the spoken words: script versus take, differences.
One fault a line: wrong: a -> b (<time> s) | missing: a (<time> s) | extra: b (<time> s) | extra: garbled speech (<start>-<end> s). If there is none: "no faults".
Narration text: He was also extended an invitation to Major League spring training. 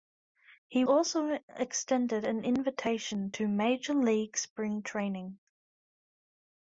missing: was (0.8 s)